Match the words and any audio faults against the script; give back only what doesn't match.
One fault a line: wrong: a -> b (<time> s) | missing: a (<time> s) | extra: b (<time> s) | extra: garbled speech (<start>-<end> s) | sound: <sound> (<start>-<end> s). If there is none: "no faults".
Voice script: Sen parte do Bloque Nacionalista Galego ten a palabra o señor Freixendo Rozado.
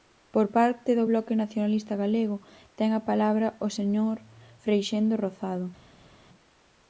wrong: Sen -> Por (0.3 s)